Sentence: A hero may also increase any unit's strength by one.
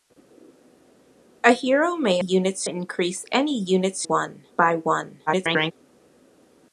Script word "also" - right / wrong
wrong